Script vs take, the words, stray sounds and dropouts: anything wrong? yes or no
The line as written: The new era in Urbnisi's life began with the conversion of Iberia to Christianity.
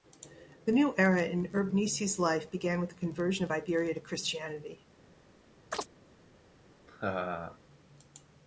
yes